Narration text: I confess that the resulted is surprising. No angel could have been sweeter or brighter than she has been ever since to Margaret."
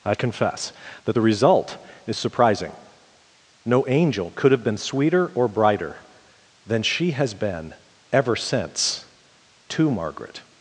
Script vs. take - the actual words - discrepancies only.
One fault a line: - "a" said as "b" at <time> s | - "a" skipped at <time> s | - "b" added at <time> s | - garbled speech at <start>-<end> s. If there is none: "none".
- "resulted" said as "result" at 1.2 s